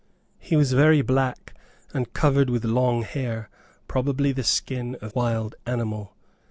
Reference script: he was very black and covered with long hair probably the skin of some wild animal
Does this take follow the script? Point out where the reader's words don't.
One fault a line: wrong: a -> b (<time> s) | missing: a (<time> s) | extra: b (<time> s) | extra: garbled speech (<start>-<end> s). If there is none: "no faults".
missing: some (5.1 s)